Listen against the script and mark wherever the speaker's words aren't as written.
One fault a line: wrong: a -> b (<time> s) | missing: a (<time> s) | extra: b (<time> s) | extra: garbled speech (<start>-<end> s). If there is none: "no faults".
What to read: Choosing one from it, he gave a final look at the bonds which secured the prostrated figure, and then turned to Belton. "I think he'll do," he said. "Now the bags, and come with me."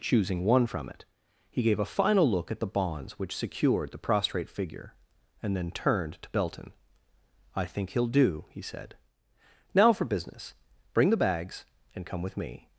wrong: prostrated -> prostrate (4.0 s)
extra: for business Bring (9.9 s)